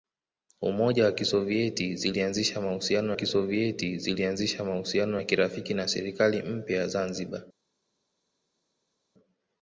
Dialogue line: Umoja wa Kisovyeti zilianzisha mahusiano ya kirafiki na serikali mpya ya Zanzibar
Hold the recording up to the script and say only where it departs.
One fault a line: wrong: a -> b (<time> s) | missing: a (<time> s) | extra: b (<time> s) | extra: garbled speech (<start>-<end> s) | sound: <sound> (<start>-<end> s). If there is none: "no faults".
extra: Kisovyeti zilianzisha mahusiano (3.1 s)